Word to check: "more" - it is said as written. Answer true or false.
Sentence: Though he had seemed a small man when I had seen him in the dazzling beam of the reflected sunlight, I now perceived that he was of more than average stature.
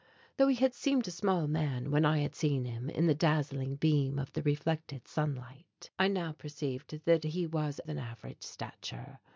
false